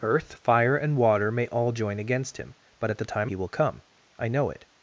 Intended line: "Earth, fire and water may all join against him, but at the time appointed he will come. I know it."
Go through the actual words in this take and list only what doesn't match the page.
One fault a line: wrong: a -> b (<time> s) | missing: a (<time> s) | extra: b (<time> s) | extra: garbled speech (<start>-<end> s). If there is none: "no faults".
missing: appointed (3.3 s)